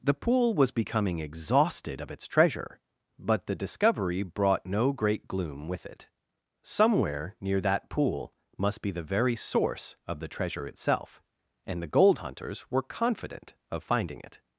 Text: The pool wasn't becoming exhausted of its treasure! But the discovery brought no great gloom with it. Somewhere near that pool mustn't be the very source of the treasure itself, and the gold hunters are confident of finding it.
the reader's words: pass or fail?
fail